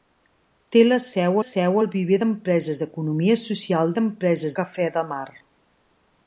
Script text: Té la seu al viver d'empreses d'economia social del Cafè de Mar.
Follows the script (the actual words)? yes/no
no